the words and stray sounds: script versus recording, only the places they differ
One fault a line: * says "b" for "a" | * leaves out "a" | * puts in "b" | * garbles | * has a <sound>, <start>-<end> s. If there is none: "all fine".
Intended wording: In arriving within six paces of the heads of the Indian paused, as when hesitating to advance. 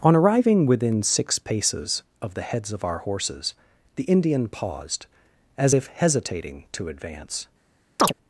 * says "On" for "In"
* puts in "our horses"
* says "if" for "when"
* has a chirp, 8.0-8.1 s